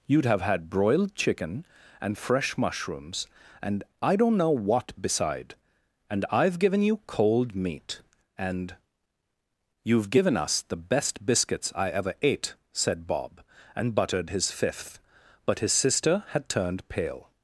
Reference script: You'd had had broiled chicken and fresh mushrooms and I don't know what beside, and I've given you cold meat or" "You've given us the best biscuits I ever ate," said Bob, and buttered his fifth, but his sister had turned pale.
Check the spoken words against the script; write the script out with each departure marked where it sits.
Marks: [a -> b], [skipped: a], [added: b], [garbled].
You'd [had -> have] had broiled chicken and fresh mushrooms and I don't know what beside, and I've given you cold meat [or" -> and] "You've given us the best biscuits I ever ate," said Bob, and buttered his fifth, but his sister had turned pale.